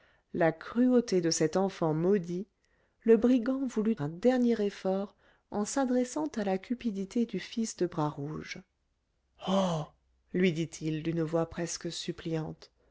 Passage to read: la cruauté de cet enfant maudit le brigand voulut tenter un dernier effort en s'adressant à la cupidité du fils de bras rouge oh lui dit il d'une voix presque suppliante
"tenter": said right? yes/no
no